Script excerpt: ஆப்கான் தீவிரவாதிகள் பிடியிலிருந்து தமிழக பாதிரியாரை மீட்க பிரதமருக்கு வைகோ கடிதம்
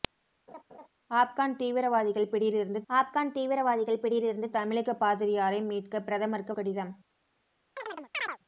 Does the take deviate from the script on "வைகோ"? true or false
true